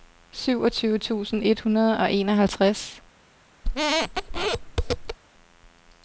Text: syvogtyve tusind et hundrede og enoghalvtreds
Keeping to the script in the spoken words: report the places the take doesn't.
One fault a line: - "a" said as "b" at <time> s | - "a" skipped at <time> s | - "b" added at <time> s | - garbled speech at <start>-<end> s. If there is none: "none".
none